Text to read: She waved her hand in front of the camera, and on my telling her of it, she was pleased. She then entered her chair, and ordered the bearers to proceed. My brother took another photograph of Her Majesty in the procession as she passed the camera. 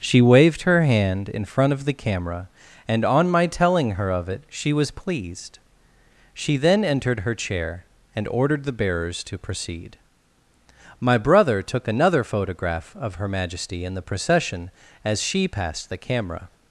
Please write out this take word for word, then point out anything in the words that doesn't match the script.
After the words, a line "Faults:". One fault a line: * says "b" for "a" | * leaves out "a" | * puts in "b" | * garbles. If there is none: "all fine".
She waved her hand in front of the camera, and on my telling her of it, she was pleased. She then entered her chair, and ordered the bearers to proceed. My brother took another photograph of Her Majesty in the procession as she passed the camera.
Faults:
all fine